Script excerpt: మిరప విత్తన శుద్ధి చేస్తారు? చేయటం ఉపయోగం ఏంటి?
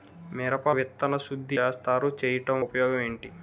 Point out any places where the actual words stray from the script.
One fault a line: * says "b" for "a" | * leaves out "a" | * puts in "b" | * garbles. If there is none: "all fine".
all fine